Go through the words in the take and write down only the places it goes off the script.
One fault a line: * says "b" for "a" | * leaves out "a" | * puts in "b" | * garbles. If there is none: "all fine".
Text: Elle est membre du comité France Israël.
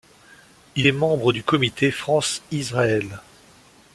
* says "Il" for "Elle"